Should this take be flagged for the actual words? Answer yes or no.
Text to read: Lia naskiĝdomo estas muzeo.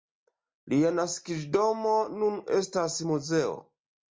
yes